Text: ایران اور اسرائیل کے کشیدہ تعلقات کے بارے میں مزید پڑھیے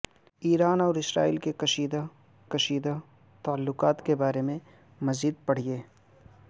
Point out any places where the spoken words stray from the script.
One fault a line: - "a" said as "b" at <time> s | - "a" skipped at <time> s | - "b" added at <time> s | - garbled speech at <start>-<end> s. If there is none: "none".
- "کشیدہ" added at 2.5 s